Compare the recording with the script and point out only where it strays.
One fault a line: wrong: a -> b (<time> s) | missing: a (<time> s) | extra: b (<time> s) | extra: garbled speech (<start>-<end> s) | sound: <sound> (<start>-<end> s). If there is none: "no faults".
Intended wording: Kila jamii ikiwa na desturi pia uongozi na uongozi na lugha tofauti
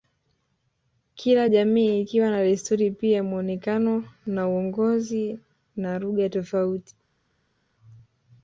wrong: uongozi -> muonekano (3.2 s)